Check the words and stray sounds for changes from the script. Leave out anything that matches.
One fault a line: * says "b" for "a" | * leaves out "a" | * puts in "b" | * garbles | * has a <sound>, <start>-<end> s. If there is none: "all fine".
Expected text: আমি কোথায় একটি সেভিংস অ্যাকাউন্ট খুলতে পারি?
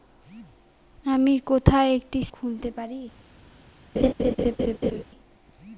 * leaves out "সেভিংস অ্যাকাউন্ট"
* has a laugh, 4.0-5.0 s